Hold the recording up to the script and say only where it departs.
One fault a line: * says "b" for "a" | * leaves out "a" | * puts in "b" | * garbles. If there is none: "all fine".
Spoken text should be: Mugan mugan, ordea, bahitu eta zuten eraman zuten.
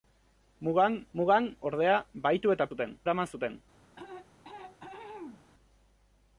all fine